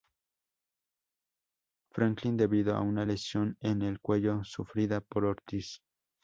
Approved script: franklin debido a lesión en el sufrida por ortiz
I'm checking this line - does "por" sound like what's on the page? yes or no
yes